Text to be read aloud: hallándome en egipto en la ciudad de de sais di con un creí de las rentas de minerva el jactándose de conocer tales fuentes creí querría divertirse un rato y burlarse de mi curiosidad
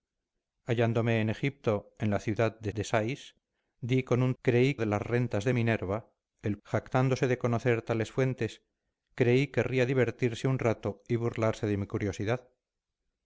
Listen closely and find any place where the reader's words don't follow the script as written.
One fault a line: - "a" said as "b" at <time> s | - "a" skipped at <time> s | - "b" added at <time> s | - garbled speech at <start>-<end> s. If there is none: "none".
none